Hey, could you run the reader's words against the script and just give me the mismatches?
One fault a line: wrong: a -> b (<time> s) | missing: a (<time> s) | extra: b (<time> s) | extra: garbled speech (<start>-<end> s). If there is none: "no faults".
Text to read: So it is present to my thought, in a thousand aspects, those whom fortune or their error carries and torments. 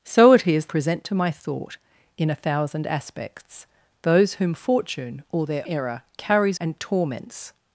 no faults